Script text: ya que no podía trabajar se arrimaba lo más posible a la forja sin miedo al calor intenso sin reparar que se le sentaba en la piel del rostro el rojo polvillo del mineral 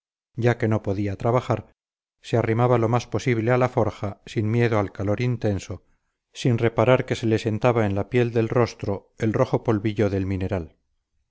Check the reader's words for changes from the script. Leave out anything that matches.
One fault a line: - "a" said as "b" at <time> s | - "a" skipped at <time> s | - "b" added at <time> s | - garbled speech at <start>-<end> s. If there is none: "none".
none